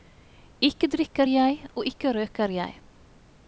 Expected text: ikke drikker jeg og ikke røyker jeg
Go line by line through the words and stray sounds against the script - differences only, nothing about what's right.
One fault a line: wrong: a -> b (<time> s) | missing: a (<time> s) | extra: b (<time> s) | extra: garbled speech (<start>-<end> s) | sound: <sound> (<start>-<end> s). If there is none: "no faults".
no faults